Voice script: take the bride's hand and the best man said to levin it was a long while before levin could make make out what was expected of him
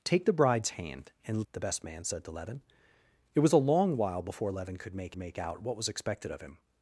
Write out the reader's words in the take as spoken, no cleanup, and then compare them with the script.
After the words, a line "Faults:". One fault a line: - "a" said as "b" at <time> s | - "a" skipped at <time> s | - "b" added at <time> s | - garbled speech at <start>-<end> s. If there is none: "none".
take the bride's hand and the best man said to levin it was a long while before levin could make make out what was expected of him
Faults:
none